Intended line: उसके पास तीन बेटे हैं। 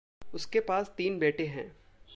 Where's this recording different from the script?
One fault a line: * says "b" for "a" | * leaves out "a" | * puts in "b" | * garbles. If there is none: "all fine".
all fine